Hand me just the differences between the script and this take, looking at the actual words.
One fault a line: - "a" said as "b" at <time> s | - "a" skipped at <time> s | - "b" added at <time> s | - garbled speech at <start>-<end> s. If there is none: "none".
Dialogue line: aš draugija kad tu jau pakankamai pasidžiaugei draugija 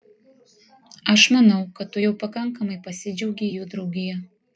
- "draugija" said as "manau" at 1.4 s
- "jų" added at 3.5 s